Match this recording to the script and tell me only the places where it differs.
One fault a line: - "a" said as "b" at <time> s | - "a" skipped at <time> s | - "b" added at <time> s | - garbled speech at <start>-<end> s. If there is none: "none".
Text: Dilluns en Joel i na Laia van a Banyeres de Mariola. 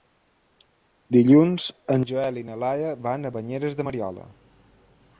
none